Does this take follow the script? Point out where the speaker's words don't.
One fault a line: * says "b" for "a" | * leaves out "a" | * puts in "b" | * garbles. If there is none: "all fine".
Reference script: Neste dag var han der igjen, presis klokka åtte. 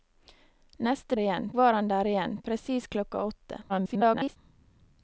* says "igjen" for "dag"
* garbles